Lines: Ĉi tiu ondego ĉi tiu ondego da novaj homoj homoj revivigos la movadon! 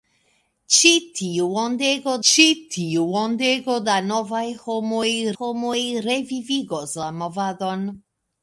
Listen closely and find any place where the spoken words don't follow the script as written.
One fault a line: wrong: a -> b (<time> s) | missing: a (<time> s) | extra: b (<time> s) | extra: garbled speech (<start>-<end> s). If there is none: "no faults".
no faults